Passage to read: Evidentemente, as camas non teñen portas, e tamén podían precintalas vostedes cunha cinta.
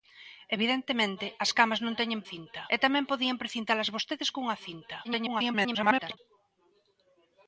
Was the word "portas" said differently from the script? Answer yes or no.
yes